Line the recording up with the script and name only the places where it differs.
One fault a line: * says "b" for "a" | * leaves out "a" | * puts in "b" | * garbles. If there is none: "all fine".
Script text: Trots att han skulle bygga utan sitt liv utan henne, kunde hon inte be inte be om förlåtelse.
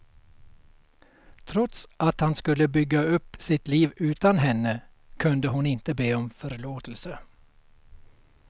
* says "upp" for "utan"
* leaves out "inte be"